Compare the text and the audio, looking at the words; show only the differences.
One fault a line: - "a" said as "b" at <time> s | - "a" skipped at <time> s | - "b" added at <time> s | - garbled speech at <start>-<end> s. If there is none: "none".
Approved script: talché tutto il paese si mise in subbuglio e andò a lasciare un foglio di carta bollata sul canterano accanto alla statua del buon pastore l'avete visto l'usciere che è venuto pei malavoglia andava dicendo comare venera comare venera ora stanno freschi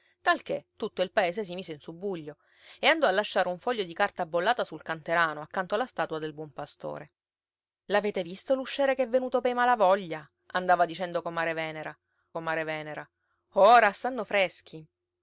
none